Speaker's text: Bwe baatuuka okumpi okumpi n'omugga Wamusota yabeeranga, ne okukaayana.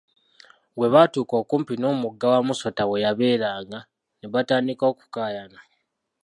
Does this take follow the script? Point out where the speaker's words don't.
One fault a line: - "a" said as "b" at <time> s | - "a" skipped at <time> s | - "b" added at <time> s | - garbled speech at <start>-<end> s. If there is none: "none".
- "okumpi" skipped at 1.7 s
- "we" added at 2.9 s
- "batandika" added at 4.3 s